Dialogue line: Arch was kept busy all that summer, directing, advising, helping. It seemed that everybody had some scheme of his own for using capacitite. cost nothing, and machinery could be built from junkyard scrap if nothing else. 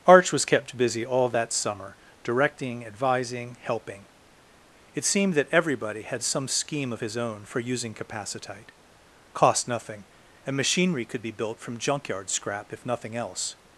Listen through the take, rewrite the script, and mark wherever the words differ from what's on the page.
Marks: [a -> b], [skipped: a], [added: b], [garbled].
Arch was kept busy all that summer, directing, advising, helping. It seemed that everybody had some scheme of his own for using capacitite. cost nothing, and machinery could be built from junkyard scrap if nothing else.